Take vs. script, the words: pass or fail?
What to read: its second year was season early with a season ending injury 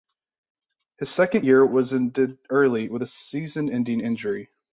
fail